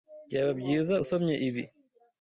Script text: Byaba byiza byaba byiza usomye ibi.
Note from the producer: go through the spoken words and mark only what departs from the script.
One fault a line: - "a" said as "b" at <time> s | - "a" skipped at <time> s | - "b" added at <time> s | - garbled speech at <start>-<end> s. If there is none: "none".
- "byaba byiza" skipped at 0.9 s